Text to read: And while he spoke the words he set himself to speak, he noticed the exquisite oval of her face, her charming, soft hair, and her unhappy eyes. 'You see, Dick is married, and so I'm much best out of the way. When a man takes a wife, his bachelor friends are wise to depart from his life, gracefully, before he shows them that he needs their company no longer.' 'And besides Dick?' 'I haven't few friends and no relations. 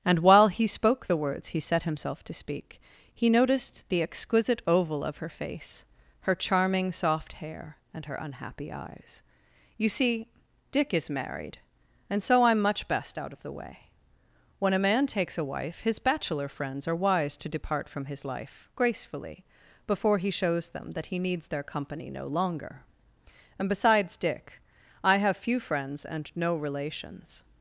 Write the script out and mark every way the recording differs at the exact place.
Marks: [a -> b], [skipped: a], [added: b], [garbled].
And while he spoke the words he set himself to speak, he noticed the exquisite oval of her face, her charming, soft hair, and her unhappy eyes. 'You see, Dick is married, and so I'm much best out of the way. When a man takes a wife, his bachelor friends are wise to depart from his life, gracefully, before he shows them that he needs their company no longer.' 'And besides Dick?' 'I [haven't -> have] few friends and no relations.